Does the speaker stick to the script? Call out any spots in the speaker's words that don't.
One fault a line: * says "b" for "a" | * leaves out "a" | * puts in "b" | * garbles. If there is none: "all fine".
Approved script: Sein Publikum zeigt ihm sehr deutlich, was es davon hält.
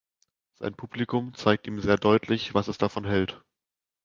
all fine